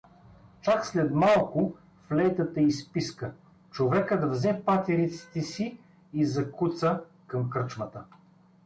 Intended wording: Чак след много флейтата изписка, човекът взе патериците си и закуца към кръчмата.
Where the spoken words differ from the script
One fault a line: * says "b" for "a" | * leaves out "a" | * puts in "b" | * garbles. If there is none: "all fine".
* says "малко" for "много"